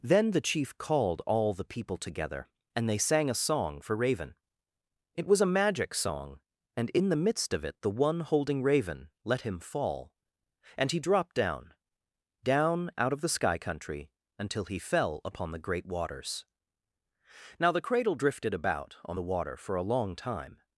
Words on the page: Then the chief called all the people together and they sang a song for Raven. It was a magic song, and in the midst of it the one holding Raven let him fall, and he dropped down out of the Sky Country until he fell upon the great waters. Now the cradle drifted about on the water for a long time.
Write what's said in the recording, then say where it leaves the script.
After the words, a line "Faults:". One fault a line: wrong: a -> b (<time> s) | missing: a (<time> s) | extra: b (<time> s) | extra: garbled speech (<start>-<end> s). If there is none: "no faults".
Then the chief called all the people together and they sang a song for Raven. It was a magic song, and in the midst of it the one holding Raven let him fall, and he dropped down down out of the Sky Country until he fell upon the great waters. Now the cradle drifted about on the water for a long time.
Faults:
extra: down (12.4 s)